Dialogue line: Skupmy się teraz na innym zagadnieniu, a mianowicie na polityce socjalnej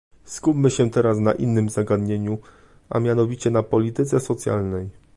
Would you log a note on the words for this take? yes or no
no